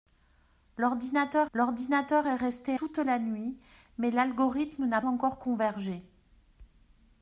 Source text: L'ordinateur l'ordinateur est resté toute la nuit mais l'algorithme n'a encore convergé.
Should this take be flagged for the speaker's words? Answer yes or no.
no